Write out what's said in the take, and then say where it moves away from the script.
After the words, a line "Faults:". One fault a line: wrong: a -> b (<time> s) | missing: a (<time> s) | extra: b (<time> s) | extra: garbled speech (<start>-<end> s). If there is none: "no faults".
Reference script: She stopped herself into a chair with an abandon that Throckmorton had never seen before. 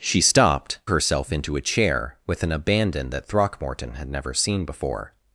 She stopped herself into a chair with an abandon that Throckmorton had never seen before.
Faults:
no faults